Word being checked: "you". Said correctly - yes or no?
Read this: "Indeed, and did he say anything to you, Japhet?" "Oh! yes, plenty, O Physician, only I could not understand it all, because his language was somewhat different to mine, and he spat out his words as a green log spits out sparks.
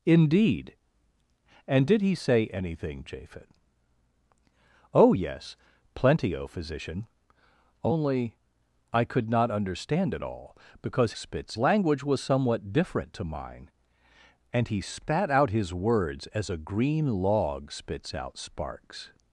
no